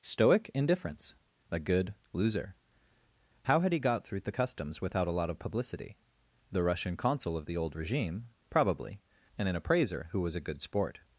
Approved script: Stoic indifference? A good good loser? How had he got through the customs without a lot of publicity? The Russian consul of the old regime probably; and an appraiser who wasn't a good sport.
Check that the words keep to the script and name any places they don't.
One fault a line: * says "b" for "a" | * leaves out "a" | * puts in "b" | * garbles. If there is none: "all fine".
* leaves out "good"
* says "was" for "wasn't"